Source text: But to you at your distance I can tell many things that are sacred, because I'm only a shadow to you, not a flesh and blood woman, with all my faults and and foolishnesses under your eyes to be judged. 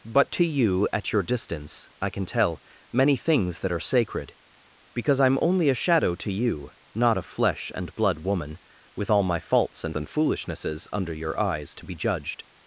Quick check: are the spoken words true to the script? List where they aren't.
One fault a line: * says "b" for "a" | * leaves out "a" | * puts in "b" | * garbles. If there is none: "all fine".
all fine